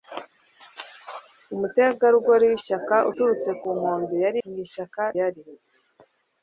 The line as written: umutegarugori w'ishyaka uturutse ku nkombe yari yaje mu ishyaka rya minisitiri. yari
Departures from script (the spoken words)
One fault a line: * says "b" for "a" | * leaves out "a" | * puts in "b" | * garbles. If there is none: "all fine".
* leaves out "yaje"
* leaves out "rya minisitiri"